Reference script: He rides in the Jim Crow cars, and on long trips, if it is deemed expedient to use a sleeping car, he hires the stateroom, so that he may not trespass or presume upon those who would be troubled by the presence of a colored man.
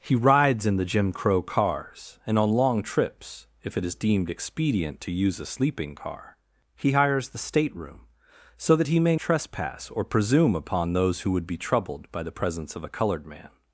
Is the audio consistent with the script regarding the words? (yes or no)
no